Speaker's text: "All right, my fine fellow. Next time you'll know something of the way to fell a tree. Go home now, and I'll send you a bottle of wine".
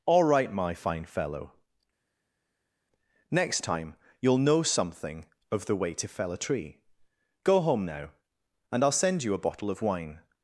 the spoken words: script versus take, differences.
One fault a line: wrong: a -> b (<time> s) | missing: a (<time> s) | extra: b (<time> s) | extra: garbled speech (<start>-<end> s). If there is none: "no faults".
no faults